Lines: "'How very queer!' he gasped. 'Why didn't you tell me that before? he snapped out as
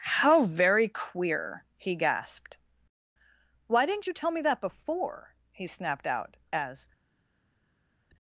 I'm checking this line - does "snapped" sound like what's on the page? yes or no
yes